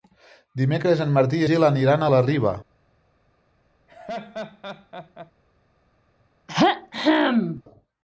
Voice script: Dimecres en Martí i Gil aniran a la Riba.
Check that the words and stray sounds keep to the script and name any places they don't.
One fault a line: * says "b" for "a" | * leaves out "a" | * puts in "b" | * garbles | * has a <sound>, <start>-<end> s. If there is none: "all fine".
* has a laugh, 3.9-5.3 s
* has a throat clearing, 6.5-7.6 s